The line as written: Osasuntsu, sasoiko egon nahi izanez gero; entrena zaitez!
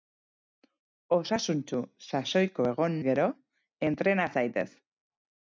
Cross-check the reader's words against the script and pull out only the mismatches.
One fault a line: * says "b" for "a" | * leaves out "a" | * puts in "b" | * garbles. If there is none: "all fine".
* leaves out "nahi izanez"